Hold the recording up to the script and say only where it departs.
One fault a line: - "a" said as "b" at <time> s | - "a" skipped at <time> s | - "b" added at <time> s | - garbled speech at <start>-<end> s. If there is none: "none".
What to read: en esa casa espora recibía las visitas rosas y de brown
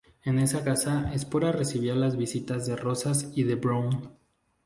- "de" added at 2.7 s